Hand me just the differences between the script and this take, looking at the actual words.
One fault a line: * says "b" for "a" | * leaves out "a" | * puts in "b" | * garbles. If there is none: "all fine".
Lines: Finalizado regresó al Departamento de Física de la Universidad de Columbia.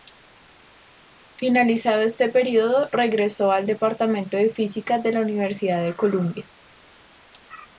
* puts in "este período"